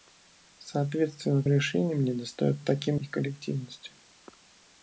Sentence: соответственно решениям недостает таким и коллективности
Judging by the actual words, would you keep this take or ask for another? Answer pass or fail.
pass